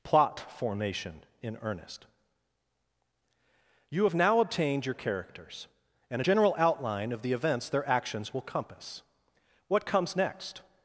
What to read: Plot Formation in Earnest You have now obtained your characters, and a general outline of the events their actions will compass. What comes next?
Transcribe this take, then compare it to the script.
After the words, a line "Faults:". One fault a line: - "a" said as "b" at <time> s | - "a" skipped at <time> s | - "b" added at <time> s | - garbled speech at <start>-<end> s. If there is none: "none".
Plot Formation in Earnest You have now obtained your characters, and a general outline of the events their actions will compass. What comes next?
Faults:
none